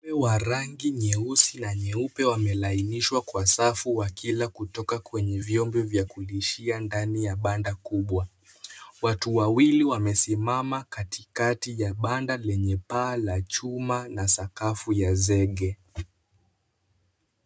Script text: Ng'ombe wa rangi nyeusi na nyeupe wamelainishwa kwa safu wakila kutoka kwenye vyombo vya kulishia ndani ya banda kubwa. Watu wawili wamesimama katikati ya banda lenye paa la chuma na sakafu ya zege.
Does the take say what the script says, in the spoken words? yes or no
yes